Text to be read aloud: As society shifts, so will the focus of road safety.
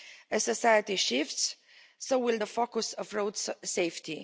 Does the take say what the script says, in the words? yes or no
yes